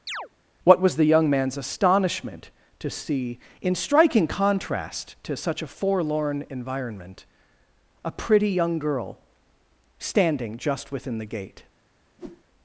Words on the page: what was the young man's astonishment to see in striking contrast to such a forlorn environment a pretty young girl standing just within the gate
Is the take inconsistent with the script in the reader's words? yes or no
no